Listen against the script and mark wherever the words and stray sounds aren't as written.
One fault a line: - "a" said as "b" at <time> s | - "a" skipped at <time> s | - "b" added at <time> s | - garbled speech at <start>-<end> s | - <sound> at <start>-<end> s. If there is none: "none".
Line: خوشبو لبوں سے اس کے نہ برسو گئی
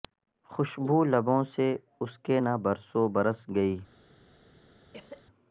- "برس" added at 3.1 s
- cough at 4.9-5.2 s